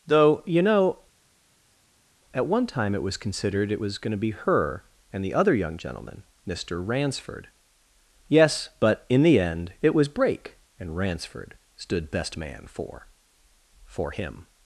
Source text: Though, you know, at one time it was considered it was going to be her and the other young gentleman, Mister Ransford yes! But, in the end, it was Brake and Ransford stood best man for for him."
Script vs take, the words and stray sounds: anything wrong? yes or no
no